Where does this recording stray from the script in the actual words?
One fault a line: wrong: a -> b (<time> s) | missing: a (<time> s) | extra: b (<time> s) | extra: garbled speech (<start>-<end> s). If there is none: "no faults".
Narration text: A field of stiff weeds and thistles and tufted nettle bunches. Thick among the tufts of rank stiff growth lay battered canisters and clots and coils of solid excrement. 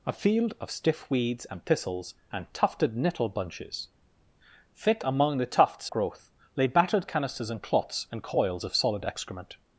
missing: of rank stiff (5.9 s)